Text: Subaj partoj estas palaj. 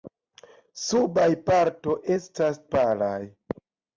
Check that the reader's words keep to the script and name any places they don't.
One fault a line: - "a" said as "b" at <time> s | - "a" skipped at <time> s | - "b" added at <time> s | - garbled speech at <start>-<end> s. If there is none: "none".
none